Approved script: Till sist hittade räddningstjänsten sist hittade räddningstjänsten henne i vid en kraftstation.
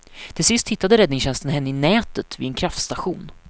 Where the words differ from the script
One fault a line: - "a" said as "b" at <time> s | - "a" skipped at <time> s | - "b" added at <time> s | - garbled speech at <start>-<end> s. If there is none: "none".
- "sist hittade räddningstjänsten" skipped at 1.5 s
- "nätet" added at 1.7 s